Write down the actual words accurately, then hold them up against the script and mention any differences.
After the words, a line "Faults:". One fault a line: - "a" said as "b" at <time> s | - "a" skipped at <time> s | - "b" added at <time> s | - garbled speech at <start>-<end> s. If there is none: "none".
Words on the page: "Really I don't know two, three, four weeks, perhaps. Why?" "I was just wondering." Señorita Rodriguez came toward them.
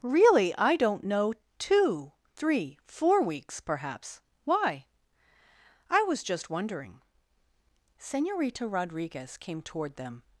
"Really I don't know two, three, four weeks, perhaps. Why?" "I was just wondering." Señorita Rodriguez came toward them.
Faults:
none